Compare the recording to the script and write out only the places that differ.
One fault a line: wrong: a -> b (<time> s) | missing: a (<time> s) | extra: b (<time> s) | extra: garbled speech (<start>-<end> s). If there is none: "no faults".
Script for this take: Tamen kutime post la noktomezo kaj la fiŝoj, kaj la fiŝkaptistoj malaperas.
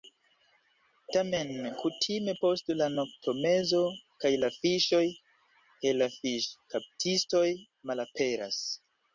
no faults